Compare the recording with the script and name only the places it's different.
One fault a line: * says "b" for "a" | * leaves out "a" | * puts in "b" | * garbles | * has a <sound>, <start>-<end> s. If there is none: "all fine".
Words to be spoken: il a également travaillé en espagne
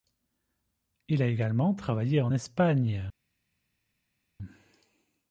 all fine